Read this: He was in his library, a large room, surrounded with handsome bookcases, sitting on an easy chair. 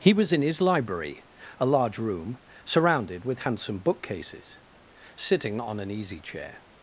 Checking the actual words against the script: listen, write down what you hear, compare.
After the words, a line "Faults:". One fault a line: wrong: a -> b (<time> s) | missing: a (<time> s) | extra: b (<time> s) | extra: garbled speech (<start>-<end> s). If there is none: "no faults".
He was in his library, a large room, surrounded with handsome bookcases, sitting on an easy chair.
Faults:
no faults